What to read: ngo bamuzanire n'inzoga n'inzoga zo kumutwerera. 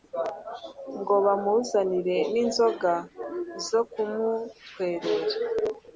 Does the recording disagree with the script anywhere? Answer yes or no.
yes